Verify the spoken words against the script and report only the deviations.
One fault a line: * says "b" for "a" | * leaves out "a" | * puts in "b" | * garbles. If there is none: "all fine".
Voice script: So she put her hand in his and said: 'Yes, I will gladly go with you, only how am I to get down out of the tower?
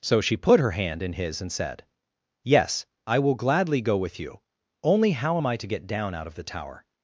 all fine